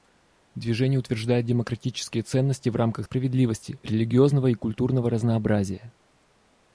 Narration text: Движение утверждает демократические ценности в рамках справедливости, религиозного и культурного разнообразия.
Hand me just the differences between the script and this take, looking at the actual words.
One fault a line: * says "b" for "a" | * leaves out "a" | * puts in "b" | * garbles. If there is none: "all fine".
all fine